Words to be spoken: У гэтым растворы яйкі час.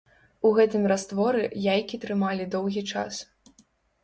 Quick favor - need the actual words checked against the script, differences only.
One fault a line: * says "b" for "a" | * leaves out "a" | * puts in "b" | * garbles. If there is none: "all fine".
* puts in "трымалі доўгі"